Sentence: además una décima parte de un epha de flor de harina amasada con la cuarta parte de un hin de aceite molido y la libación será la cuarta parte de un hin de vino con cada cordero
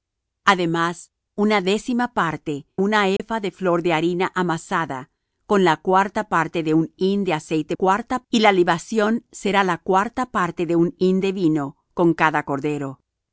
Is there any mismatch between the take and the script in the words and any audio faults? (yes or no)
yes